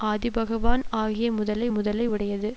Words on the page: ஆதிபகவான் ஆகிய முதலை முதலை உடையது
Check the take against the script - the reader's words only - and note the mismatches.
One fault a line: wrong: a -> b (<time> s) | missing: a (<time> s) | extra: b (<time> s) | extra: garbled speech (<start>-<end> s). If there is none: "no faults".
no faults